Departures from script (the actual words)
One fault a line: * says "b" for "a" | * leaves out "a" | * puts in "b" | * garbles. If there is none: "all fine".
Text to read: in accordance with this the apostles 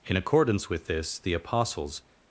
all fine